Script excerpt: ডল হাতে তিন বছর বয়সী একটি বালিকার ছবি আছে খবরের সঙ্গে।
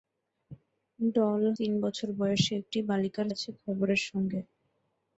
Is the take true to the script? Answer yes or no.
no